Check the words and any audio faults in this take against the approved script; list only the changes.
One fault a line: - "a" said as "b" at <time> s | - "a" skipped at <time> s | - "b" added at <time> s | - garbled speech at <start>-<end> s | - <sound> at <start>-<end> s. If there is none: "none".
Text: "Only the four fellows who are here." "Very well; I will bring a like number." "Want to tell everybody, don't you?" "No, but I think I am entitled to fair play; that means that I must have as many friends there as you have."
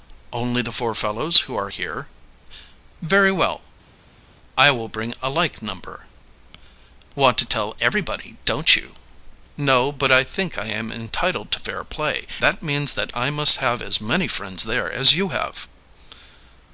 none